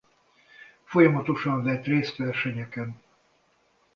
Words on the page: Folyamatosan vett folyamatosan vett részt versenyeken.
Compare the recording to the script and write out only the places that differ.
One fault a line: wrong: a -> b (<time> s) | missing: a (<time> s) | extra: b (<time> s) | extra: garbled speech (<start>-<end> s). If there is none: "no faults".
missing: folyamatosan vett (1.9 s)